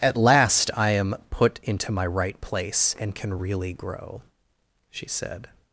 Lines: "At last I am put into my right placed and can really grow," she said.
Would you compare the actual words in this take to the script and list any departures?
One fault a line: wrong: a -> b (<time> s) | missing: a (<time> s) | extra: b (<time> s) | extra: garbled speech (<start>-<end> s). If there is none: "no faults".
wrong: placed -> place (2.4 s)